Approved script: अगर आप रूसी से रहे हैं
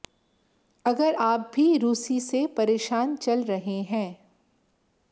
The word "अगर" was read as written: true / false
true